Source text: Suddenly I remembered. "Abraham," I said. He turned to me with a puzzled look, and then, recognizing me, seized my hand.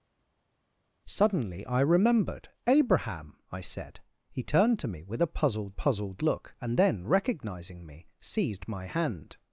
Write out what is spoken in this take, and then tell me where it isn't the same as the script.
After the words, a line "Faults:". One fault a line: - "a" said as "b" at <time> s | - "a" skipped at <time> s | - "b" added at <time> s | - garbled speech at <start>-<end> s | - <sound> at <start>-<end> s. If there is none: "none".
Suddenly I remembered. "Abraham," I said. He turned to me with a puzzled puzzled look, and then, recognizing me, seized my hand.
Faults:
- "puzzled" added at 5.8 s